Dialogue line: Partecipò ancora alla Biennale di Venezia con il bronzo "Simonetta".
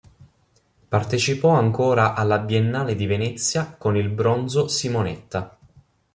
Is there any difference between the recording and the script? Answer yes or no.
no